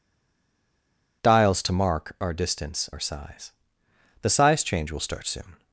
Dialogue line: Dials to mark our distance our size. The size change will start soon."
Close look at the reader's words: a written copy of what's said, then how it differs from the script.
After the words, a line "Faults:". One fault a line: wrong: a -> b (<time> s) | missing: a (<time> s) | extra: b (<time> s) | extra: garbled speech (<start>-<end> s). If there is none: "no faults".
Dials to mark our distance our size. The size change will start soon."
Faults:
no faults